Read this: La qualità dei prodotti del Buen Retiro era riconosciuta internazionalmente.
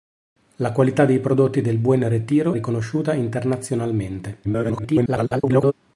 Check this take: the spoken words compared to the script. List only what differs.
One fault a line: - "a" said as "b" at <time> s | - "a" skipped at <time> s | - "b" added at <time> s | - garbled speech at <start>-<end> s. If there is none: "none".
- "era" skipped at 2.5 s
- garbled speech at 4.4-5.7 s